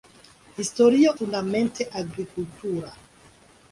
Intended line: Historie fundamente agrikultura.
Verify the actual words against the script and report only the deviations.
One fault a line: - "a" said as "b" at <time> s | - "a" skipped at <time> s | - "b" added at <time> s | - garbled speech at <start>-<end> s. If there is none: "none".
none